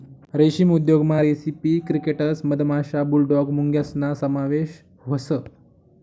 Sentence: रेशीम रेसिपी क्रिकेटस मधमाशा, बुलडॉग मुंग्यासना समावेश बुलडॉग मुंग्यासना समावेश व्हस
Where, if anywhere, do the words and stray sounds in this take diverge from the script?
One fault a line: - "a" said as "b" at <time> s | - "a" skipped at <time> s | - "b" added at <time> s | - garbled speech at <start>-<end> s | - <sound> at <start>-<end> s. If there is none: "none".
- "उद्योगमा" added at 0.7 s
- "बुलडॉग मुंग्यासना समावेश" skipped at 4.8 s